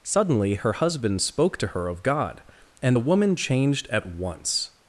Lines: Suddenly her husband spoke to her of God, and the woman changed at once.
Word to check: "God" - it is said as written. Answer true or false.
true